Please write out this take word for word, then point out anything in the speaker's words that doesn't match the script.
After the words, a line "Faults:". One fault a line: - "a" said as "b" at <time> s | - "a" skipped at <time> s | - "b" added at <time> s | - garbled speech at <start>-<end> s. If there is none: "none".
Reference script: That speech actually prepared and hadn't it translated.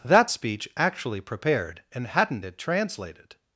That speech actually prepared and hadn't it translated.
Faults:
none